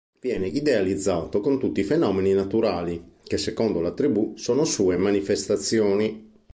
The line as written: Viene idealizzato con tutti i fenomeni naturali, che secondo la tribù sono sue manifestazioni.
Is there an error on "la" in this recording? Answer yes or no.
no